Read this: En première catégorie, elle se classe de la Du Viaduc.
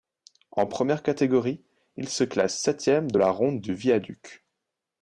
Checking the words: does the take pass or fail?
fail